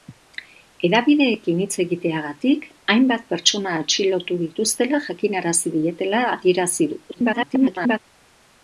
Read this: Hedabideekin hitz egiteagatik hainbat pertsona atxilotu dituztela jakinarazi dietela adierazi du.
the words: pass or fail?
fail